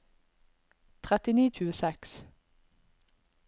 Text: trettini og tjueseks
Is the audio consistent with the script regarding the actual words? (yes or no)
yes